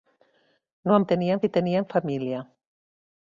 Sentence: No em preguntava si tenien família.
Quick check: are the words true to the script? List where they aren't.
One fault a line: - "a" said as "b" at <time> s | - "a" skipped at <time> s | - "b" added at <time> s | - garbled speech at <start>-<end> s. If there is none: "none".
- "preguntava" said as "tenien" at 1.1 s